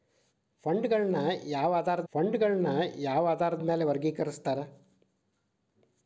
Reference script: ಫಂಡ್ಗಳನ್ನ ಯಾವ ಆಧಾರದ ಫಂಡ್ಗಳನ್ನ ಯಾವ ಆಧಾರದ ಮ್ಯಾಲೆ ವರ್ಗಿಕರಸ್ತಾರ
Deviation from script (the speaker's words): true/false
false